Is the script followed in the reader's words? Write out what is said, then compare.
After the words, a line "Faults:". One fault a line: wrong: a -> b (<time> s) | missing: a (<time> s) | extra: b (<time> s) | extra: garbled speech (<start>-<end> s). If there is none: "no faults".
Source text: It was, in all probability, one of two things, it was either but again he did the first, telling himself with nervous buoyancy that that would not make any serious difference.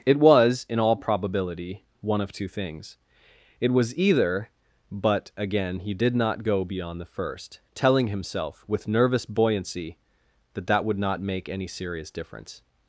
It was, in all probability, one of two things, it was either but again he did not go beyond the first, telling himself with nervous buoyancy that that would not make any serious difference.
Faults:
extra: not go beyond (6.2 s)